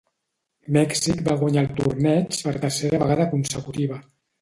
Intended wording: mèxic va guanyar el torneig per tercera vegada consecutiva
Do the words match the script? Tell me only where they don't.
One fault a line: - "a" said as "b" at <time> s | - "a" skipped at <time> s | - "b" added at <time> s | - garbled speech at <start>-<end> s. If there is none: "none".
none